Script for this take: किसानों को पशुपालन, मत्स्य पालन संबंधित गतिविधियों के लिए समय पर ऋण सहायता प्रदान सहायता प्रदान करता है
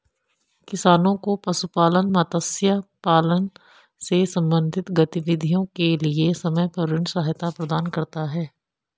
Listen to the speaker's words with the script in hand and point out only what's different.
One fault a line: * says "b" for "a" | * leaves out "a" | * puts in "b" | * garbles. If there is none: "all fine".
* puts in "से"
* leaves out "सहायता प्रदान"